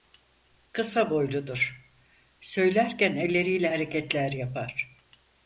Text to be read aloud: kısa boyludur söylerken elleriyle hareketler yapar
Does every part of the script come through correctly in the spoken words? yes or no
yes